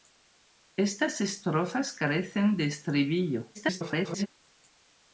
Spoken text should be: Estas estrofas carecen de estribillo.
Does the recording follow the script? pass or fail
fail